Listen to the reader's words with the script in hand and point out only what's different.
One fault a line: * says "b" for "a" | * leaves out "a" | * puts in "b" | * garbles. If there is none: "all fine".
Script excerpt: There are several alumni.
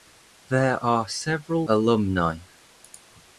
all fine